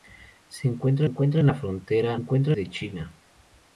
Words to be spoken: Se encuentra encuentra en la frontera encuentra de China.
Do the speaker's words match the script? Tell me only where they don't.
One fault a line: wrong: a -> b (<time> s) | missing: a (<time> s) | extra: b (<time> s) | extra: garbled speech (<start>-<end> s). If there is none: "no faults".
no faults